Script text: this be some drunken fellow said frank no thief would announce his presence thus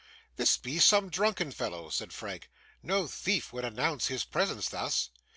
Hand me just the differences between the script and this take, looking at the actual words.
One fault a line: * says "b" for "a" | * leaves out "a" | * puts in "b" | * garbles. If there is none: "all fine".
all fine